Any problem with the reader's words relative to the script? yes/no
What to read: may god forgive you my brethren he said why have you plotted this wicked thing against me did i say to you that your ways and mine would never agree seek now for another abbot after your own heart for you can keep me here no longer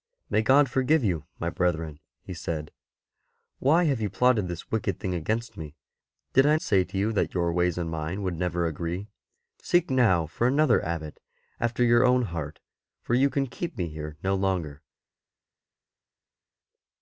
no